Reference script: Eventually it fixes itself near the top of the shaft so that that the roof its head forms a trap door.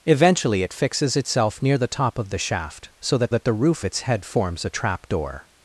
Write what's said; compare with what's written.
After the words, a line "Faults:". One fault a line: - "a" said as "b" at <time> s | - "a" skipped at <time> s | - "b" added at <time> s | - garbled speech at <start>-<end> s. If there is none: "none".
Eventually it fixes itself near the top of the shaft so that that the roof its head forms a trap door.
Faults:
none